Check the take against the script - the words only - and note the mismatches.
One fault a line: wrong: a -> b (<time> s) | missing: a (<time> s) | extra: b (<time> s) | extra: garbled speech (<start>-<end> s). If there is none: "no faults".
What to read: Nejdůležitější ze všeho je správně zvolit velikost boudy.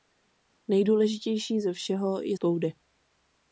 missing: správně zvolit velikost (2.4 s)